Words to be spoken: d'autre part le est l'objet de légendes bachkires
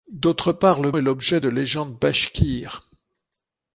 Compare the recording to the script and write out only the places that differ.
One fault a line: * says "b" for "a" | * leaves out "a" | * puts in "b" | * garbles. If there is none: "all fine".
all fine